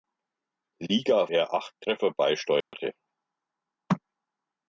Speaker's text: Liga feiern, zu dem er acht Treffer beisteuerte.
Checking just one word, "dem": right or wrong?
wrong